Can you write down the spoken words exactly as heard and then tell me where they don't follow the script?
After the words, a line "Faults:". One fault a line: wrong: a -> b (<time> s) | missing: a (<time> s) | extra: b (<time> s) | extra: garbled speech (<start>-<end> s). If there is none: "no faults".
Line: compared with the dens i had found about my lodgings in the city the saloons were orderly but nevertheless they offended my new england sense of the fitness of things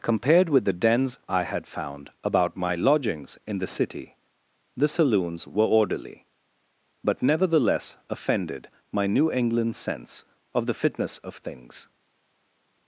compared with the dens i had found about my lodgings in the city the saloons were orderly but nevertheless offended my new england sense of the fitness of things
Faults:
missing: they (8.0 s)